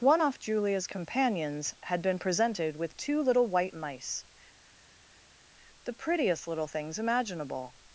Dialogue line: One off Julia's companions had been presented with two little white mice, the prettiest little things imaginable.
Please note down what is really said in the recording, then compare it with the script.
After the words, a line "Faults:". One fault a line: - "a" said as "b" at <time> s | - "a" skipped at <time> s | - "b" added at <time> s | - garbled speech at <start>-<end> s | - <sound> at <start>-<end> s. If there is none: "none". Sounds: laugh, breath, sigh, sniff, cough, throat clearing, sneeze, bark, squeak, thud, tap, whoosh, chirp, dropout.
One off Julia's companions had been presented with two little white mice, the prettiest little things imaginable.
Faults:
none